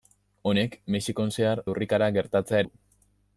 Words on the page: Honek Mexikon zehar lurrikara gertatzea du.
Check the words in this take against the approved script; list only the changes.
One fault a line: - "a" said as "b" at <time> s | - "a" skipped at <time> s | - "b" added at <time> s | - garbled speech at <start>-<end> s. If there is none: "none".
none